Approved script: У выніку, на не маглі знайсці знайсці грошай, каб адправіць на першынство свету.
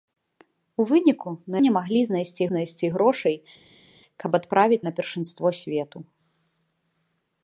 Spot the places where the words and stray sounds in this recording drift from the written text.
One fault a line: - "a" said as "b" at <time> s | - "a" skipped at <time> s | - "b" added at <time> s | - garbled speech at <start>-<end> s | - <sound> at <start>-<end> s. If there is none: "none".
none